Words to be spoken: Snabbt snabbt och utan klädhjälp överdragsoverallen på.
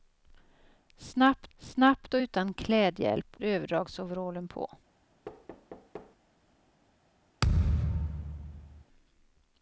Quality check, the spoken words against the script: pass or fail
pass